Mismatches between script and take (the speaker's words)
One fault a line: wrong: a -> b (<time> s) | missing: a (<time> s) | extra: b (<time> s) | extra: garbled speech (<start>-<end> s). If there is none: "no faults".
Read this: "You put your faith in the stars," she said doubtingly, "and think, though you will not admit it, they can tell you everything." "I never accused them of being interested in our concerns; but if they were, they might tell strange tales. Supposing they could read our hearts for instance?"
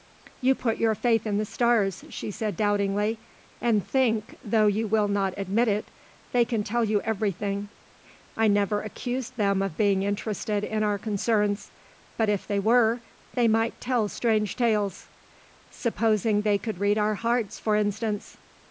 no faults